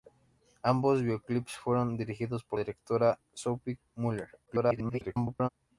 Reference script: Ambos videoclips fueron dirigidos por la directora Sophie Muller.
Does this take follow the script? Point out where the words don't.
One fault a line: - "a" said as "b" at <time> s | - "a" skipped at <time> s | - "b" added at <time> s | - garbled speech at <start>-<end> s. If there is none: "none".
- "la" skipped at 2.6 s
- garbled speech at 4.5-5.5 s